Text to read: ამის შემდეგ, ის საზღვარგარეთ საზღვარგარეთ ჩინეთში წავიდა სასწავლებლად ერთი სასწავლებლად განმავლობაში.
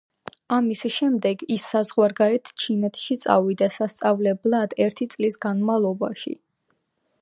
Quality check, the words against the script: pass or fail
fail